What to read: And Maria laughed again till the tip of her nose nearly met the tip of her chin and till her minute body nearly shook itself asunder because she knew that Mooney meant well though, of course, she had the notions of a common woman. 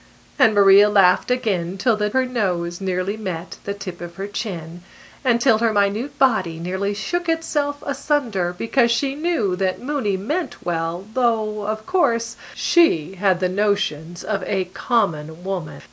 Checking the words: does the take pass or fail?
fail